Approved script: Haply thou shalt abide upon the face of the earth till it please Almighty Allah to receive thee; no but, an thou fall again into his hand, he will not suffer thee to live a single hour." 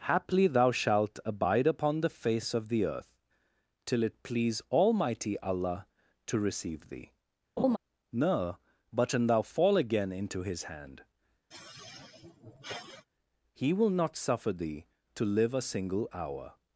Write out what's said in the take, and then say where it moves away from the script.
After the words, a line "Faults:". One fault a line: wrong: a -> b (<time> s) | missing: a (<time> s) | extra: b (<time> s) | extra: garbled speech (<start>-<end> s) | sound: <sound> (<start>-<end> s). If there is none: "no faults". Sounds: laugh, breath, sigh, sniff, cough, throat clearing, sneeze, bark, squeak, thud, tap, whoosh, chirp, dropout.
Haply thou shalt abide upon the face of the earth till it please Almighty Allah to receive thee; no but, an thou fall again into his hand, he will not suffer thee to live a single hour."
Faults:
sound: laugh (7.6-7.8 s)
sound: sigh (11.5-13.1 s)